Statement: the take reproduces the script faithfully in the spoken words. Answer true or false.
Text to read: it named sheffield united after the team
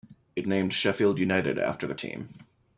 true